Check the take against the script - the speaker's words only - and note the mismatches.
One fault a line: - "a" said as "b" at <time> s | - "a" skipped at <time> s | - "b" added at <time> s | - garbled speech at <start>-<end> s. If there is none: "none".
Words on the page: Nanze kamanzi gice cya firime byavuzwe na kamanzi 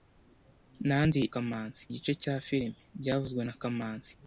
none